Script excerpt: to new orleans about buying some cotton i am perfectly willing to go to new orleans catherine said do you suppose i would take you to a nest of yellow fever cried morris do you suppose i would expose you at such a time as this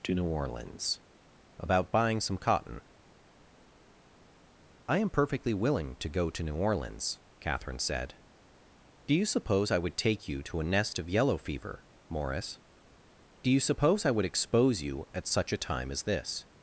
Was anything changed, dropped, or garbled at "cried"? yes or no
yes